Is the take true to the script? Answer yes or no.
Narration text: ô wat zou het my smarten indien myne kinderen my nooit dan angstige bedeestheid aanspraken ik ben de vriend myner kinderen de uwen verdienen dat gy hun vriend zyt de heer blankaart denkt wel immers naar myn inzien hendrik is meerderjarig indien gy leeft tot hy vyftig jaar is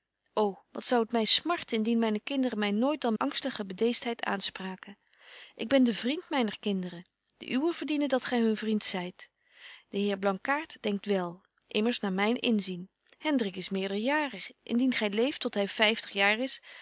yes